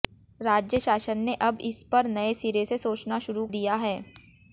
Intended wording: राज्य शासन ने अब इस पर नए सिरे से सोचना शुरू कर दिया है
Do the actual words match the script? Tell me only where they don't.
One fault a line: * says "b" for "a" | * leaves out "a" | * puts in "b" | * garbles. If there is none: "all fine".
* leaves out "कर"